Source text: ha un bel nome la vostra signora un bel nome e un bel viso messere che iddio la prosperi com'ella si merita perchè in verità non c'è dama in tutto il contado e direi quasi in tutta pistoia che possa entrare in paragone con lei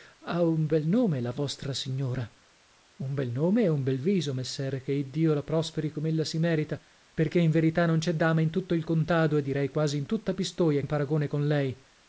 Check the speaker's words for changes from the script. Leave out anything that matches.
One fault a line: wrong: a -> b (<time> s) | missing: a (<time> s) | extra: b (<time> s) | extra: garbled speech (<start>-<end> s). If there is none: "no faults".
missing: che possa entrare (10.8 s)